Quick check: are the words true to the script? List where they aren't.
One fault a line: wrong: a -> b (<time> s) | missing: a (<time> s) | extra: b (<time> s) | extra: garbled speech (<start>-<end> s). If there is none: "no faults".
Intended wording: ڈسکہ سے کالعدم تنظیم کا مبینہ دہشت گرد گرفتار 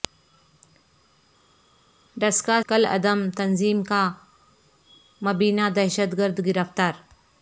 missing: سے (2.6 s)